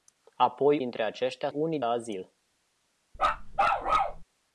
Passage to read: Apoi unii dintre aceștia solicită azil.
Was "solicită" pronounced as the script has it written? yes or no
no